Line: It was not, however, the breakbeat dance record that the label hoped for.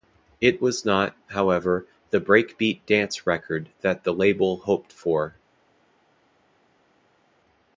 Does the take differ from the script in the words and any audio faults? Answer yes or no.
no